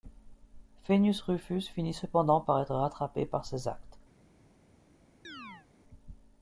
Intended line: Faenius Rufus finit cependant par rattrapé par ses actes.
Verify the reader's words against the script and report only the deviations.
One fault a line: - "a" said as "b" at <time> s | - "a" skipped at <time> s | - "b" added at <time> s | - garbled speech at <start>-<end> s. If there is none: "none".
- "être" added at 2.6 s